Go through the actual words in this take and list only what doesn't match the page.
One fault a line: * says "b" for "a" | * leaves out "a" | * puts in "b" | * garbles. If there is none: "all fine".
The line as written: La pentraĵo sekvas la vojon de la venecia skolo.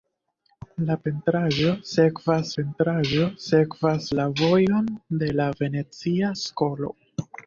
* puts in "pentraĵo sekvas"